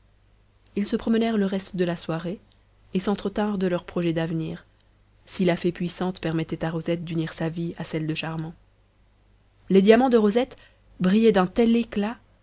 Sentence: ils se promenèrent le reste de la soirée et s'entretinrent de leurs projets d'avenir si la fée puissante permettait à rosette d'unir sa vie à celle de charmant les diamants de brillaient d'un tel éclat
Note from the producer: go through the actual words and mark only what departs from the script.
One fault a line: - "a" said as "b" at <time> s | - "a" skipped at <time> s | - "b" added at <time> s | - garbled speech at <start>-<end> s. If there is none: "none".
- "rosette" added at 10.2 s